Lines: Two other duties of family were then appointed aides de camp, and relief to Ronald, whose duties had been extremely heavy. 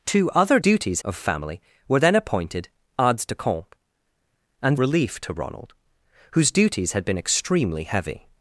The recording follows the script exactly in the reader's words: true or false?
true